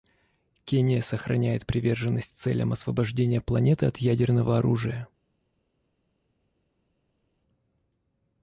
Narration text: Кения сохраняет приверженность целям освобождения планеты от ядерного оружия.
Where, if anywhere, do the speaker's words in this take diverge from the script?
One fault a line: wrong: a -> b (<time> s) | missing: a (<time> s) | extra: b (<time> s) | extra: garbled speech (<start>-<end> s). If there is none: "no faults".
no faults